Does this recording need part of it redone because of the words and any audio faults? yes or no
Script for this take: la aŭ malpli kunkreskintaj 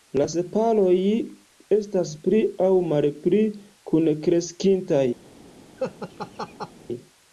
yes